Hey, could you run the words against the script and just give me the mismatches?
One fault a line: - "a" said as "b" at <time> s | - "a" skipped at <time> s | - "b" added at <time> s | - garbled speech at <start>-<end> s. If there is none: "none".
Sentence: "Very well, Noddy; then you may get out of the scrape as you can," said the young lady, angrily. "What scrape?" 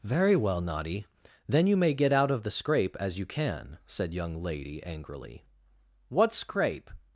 - "the" skipped at 4.1 s